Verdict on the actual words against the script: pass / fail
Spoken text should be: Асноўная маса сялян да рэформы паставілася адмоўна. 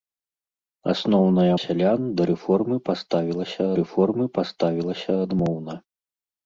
fail